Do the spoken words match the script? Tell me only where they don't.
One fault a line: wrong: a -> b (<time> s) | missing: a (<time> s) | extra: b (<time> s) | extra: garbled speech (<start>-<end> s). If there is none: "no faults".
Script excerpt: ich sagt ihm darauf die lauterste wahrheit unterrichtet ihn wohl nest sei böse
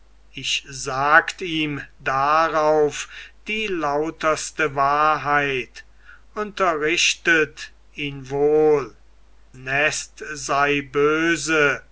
no faults